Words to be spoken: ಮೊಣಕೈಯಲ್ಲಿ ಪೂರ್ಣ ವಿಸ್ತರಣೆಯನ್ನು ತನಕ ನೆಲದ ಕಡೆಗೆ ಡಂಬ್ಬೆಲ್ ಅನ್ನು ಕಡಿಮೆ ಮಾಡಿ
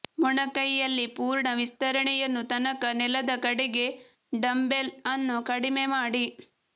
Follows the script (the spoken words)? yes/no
yes